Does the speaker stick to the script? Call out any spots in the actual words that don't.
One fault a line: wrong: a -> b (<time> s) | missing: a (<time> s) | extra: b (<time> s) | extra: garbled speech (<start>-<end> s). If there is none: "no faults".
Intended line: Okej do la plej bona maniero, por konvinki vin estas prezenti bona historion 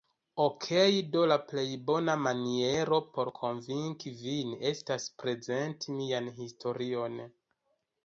wrong: bona -> mian (6.0 s)